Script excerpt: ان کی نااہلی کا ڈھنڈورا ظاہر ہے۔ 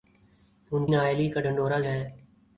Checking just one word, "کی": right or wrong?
wrong